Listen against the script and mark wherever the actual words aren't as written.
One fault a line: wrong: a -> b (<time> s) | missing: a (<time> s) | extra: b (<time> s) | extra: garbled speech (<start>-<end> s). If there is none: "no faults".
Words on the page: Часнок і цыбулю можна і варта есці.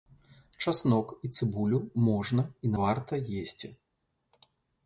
no faults